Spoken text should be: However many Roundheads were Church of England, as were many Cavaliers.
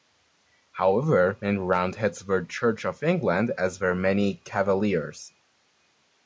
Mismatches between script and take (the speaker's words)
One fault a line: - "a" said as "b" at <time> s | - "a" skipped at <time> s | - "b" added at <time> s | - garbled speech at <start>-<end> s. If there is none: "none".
none